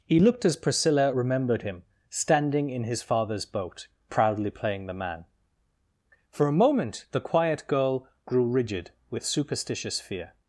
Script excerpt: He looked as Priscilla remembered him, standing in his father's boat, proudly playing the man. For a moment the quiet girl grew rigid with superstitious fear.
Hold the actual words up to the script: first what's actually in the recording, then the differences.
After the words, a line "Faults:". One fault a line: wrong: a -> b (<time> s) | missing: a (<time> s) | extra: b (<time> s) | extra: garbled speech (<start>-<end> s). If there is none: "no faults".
He looked as Priscilla remembered him, standing in his father's boat, proudly playing the man. For a moment the quiet girl grew rigid with superstitious fear.
Faults:
no faults